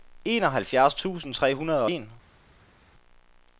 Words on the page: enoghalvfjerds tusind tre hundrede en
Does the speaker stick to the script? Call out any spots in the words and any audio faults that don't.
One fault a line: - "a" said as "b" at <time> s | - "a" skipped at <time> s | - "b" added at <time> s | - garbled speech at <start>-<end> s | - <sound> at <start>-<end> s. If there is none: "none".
none